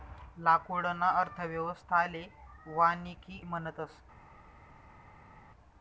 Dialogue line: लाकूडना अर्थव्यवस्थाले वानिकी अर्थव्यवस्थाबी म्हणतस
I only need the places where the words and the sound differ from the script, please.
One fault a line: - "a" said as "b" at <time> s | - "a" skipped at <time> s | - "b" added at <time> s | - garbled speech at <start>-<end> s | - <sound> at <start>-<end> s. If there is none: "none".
- "अर्थव्यवस्थाबी" skipped at 3.4 s